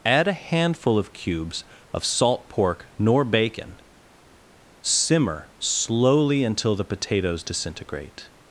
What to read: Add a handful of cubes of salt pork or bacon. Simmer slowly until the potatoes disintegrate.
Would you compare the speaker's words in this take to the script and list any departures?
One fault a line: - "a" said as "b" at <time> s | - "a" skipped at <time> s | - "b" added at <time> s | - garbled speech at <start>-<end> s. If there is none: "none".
- "or" said as "nor" at 3.0 s